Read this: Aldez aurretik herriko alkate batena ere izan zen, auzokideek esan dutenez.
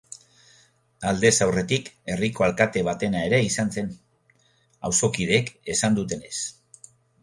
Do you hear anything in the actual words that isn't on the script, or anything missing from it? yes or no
no